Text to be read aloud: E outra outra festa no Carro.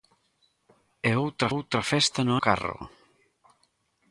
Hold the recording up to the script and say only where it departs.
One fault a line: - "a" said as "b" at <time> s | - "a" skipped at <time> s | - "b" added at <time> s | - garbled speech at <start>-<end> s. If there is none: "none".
none